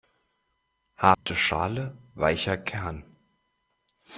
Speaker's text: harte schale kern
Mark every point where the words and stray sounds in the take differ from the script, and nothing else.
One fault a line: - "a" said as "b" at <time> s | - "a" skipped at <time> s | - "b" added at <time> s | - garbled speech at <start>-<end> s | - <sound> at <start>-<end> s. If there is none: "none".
- dropout at 1.1-1.3 s
- "weicher" added at 2.1 s